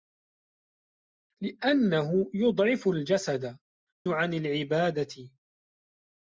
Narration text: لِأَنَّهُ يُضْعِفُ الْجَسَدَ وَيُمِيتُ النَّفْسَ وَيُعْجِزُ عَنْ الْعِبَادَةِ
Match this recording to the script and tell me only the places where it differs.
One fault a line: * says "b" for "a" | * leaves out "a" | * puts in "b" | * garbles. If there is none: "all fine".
* leaves out "وَيُمِيتُ النَّفْسَ وَيُعْجِزُ"